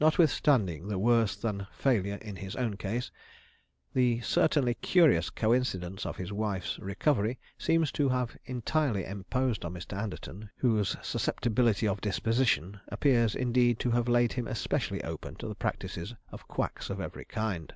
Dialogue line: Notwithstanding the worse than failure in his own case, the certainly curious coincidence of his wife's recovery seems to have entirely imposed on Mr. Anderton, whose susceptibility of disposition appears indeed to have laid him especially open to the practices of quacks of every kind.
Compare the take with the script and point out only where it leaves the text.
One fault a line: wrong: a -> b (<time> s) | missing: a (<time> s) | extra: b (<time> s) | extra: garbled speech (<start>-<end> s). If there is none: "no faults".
no faults